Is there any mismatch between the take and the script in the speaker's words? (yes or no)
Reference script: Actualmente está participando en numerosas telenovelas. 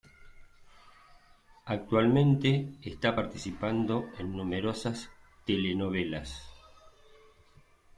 no